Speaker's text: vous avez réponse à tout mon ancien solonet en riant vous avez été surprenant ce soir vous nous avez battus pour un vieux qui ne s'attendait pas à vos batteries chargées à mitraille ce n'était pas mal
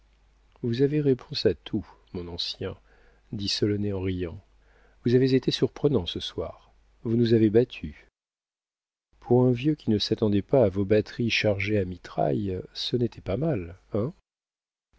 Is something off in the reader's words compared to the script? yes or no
yes